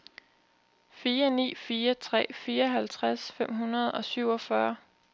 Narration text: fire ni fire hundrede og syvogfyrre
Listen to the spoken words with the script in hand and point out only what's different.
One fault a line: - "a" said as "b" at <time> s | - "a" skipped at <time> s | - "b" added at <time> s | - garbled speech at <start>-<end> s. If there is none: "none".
- "tre fireoghalvtreds fem" added at 1.9 s